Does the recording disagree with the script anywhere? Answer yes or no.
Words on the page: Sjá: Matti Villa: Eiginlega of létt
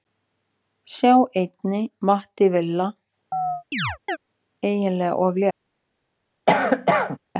yes